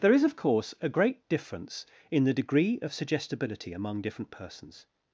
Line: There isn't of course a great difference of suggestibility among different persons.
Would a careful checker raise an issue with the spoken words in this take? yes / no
yes